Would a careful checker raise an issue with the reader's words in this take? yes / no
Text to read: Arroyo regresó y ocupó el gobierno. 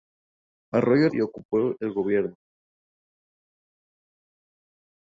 yes